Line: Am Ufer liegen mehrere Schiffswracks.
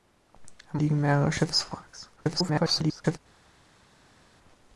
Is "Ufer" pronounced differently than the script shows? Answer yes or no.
yes